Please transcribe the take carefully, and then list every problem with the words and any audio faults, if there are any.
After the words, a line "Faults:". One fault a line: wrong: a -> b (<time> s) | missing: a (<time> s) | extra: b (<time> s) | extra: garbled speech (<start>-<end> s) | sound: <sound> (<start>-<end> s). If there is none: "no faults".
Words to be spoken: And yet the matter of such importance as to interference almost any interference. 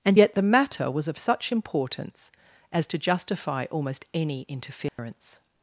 And yet the matter was of such importance as to justify almost any interference.
Faults:
extra: was (0.9 s)
wrong: interference -> justify (3.0 s)
sound: dropout (4.9-5.0 s)